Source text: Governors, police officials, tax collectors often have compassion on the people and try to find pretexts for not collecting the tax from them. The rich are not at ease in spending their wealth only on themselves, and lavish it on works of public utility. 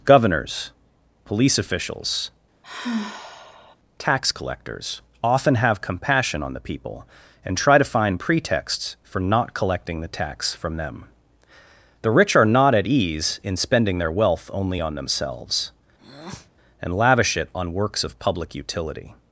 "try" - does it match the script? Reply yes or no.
yes